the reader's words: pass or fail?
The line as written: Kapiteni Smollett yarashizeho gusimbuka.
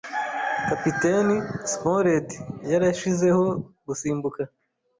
pass